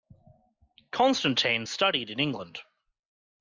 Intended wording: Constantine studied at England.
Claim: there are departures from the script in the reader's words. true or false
true